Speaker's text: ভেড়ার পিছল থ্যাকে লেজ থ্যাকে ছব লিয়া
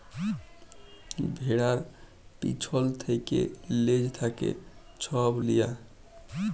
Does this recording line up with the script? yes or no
yes